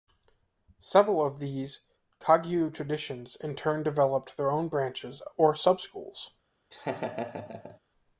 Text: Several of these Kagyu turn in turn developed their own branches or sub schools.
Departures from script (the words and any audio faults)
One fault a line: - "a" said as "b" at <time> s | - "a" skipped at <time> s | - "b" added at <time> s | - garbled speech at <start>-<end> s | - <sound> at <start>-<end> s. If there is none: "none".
- "turn" said as "traditions" at 2.7 s
- laugh at 6.7-7.8 s